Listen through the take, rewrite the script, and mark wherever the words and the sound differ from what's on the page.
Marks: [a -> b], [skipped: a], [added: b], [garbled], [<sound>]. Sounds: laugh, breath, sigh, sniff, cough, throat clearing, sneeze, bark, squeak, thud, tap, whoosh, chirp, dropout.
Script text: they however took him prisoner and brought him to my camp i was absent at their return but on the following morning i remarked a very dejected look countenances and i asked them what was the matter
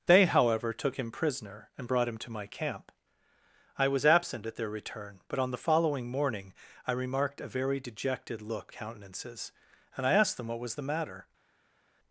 they however took him prisoner and brought him to my camp i was absent at their return but on the following morning i remarked a very dejected look countenances and i asked them what was the matter